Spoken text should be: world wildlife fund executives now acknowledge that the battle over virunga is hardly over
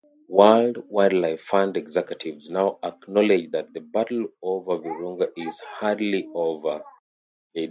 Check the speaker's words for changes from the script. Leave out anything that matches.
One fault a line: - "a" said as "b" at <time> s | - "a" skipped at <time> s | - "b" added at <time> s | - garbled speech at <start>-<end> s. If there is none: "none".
none